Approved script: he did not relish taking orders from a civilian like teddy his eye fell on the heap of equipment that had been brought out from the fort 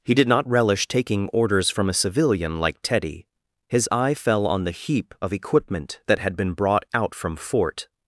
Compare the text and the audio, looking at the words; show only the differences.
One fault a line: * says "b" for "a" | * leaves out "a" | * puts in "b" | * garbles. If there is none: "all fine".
* leaves out "the"